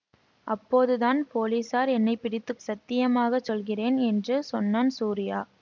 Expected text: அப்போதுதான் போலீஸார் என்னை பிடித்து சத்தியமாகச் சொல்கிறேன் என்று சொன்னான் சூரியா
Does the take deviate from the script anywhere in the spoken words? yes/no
no